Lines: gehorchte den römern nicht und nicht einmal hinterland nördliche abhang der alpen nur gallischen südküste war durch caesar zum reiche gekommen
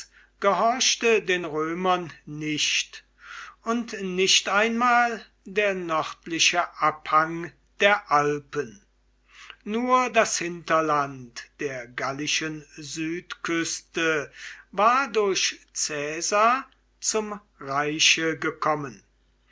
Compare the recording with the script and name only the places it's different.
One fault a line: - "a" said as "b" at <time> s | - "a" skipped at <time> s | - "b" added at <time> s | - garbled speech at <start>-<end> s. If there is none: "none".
- "hinterland" said as "der" at 5.4 s
- "das hinterland der" added at 10.1 s